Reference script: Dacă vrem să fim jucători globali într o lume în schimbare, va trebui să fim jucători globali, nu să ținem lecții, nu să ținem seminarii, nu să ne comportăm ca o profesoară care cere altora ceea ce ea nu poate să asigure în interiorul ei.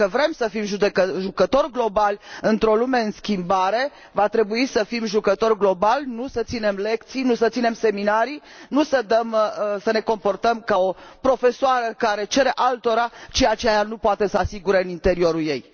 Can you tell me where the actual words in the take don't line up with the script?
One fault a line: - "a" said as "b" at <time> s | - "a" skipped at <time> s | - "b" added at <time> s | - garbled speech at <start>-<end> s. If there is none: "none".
none